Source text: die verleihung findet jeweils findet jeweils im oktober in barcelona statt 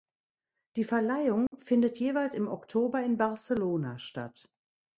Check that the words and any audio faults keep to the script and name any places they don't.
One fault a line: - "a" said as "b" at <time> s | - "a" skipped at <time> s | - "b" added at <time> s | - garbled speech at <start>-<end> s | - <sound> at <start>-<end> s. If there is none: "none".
- dropout at 1.5-1.5 s
- "findet jeweils" skipped at 2.3 s